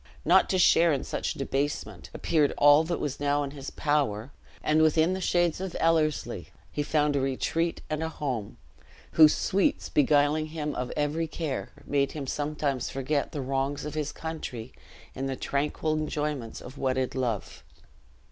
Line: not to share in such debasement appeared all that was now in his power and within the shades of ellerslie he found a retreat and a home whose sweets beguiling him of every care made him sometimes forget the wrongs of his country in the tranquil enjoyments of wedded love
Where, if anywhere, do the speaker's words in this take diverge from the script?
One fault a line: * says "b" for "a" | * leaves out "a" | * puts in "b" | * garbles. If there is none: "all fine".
all fine